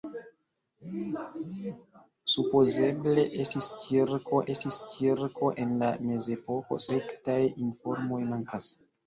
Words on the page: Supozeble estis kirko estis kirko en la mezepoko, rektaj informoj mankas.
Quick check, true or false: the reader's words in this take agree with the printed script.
true